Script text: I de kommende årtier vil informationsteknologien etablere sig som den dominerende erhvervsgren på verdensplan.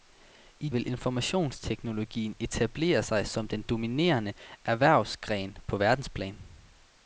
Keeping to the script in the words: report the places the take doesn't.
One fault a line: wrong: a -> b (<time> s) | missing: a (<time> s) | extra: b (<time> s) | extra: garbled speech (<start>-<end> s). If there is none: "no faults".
missing: de kommende årtier (0.7 s)